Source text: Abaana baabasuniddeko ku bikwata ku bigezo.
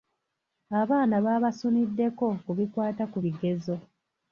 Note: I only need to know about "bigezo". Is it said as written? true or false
true